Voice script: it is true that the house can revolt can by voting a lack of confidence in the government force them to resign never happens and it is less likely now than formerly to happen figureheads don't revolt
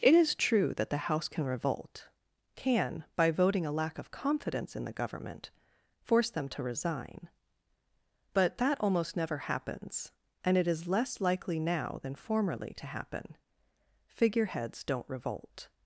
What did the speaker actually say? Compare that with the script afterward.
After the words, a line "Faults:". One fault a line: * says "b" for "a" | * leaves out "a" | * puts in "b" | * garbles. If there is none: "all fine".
it is true that the house can revolt can by voting a lack of confidence in the government force them to resign but that almost never happens and it is less likely now than formerly to happen figureheads don't revolt
Faults:
* puts in "but that almost"